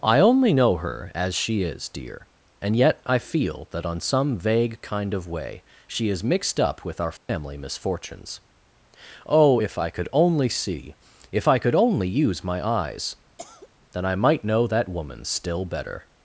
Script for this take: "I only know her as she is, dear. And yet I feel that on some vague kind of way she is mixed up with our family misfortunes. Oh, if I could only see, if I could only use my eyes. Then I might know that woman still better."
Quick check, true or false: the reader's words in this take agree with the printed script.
true